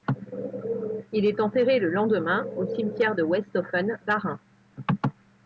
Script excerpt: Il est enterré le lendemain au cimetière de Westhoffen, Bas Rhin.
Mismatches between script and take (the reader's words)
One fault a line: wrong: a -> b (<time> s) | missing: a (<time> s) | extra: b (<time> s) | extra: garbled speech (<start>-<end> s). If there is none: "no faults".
no faults